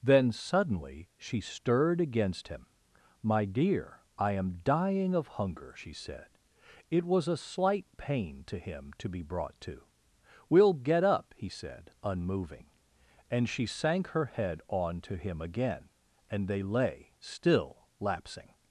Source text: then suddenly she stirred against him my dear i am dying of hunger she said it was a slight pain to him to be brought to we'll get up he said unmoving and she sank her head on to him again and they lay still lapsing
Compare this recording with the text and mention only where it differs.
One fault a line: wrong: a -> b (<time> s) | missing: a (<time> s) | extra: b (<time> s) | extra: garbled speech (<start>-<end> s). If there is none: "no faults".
no faults